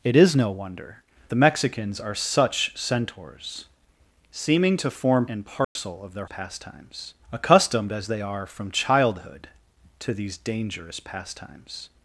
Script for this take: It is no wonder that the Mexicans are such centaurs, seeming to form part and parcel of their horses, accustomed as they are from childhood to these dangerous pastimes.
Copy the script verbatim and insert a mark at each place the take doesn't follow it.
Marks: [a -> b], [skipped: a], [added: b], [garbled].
It is no wonder [skipped: that] the Mexicans are such centaurs, seeming to form [skipped: part] and parcel of their [horses, -> pastimes] accustomed as they are from childhood to these dangerous pastimes.